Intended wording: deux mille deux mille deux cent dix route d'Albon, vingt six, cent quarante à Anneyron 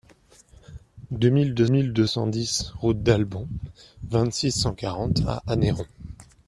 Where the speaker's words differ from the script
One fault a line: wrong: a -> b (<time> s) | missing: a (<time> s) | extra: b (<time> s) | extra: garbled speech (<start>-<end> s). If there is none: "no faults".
no faults